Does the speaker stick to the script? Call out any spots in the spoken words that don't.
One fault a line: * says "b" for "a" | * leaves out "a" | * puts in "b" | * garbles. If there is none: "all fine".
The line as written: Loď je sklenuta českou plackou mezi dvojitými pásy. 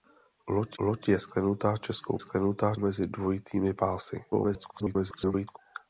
* puts in "loď"
* says "sklenuta" for "plackou"
* garbles